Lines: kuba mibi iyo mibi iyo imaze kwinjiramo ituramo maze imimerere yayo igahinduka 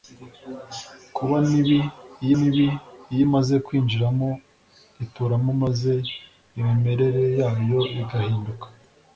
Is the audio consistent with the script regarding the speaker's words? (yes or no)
yes